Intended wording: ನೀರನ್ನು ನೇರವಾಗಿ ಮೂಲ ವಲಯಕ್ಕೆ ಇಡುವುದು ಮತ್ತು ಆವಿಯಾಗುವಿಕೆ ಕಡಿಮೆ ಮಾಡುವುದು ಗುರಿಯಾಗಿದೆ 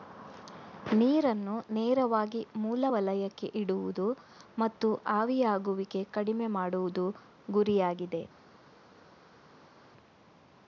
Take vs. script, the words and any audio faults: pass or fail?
pass